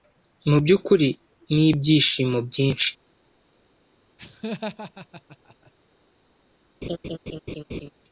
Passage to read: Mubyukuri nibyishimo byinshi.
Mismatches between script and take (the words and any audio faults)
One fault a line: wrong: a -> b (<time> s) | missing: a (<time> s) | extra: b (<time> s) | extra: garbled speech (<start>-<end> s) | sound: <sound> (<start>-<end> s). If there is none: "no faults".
sound: laugh (4.2-5.7 s)
sound: laugh (6.8-7.9 s)